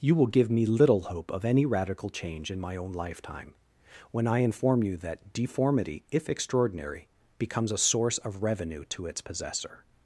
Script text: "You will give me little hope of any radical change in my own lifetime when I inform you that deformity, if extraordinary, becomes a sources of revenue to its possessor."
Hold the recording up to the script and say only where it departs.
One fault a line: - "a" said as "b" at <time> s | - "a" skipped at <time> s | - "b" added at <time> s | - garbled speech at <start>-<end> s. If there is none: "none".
- "sources" said as "source" at 7.8 s